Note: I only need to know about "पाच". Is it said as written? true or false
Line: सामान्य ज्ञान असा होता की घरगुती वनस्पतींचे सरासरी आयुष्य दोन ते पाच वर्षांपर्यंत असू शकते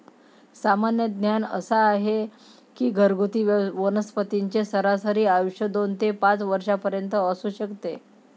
true